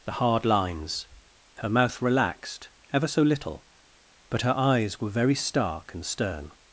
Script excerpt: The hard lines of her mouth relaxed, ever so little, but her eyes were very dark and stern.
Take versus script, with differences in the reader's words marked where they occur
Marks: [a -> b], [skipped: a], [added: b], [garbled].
The hard lines [skipped: of] her mouth relaxed, ever so little, but her eyes were very [dark -> stark] and stern.